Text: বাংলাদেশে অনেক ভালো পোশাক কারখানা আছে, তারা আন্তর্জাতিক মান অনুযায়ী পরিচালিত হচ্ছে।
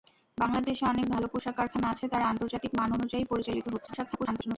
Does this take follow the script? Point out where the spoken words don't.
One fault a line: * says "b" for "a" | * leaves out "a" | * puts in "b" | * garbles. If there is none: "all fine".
* garbles